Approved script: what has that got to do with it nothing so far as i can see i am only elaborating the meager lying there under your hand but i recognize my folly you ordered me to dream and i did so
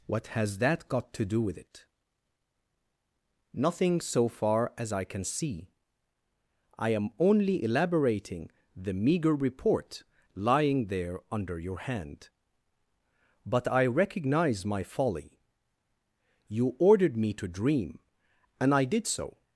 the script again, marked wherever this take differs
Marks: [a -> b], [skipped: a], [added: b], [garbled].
what has that got to do with it nothing so far as i can see i am only elaborating the meager [added: report] lying there under your hand but i recognize my folly you ordered me to dream and i did so